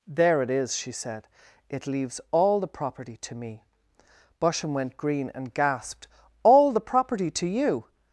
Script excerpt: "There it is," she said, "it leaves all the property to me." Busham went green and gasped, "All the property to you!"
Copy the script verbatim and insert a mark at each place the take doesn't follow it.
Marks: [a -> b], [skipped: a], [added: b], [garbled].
"There it is," she said, "it leaves all the property to me." Busham went green and gasped, "All the property to you!"